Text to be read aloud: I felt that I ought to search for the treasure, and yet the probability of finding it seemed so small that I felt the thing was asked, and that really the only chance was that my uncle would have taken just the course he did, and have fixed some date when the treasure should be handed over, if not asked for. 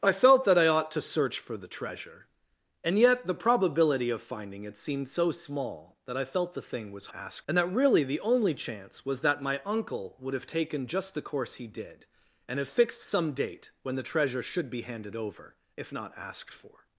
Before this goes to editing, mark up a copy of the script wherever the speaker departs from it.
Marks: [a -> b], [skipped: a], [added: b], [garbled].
I felt that I ought to search for the treasure, and yet the probability of finding it seemed so small that I felt the thing was asked, and that really the only chance was that my uncle would have taken just the course he did, and have fixed some date when the treasure should be handed over, if not asked for.